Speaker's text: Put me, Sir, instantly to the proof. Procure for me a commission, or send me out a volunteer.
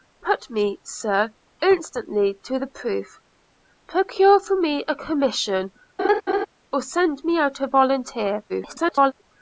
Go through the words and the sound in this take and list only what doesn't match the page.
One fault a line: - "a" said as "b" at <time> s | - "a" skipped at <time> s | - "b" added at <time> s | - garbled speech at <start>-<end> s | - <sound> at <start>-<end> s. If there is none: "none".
- laugh at 6.0-6.5 s
- garbled speech at 8.5-9.1 s